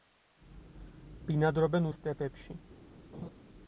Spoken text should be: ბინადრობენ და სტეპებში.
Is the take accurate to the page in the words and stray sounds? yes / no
no